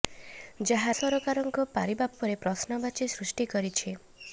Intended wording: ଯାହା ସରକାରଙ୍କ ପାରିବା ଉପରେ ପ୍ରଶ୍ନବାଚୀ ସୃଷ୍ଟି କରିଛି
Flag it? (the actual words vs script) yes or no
no